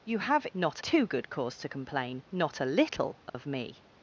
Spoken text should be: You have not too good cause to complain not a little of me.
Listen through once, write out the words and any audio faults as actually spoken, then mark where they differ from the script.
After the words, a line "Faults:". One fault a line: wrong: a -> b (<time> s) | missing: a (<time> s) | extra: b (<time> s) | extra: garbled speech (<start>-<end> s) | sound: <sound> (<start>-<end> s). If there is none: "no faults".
You have not too good cause to complain not a little of me.
Faults:
sound: dropout (3.3-3.3 s)